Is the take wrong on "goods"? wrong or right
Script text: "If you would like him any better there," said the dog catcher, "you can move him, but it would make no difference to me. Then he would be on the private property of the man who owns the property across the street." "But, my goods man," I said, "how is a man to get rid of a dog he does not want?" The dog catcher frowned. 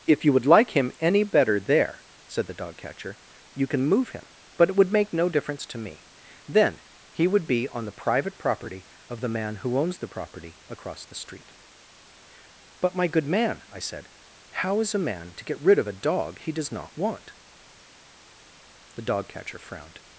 wrong